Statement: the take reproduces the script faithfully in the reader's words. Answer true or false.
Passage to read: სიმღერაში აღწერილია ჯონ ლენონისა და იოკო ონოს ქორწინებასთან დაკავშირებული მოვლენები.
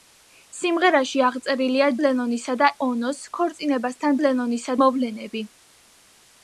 false